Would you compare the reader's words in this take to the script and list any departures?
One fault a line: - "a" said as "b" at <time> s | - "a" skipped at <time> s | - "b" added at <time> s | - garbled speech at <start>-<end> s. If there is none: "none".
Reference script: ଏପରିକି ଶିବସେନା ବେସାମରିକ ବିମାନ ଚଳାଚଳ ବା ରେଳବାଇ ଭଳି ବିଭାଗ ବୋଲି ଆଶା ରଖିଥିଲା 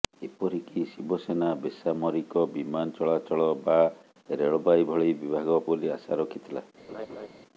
none